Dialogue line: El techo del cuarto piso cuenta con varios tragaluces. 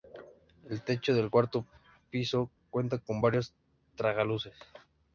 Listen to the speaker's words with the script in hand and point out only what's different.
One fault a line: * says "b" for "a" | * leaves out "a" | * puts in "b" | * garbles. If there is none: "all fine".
all fine